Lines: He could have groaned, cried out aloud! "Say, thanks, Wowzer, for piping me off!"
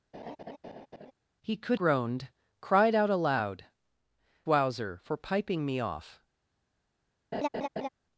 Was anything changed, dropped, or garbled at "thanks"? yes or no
yes